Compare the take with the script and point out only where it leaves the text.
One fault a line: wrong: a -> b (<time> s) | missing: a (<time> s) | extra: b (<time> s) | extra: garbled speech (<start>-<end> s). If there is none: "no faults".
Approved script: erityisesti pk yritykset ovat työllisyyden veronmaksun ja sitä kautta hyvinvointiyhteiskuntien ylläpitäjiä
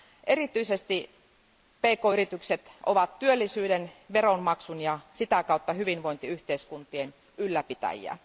no faults